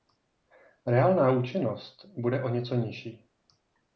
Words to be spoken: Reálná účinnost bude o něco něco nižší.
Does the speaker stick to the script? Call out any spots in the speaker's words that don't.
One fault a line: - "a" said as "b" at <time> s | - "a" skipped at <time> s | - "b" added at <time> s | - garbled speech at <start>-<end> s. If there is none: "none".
- "něco" skipped at 2.8 s